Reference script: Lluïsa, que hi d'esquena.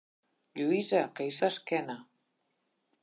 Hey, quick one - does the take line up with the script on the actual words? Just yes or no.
yes